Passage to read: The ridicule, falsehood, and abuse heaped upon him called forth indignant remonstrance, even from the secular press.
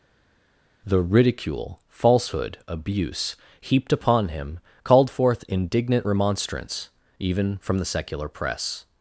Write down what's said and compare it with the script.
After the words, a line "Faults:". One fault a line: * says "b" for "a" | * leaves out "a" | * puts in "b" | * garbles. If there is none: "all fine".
The ridicule, falsehood, abuse heaped upon him called forth indignant remonstrance, even from the secular press.
Faults:
* leaves out "and"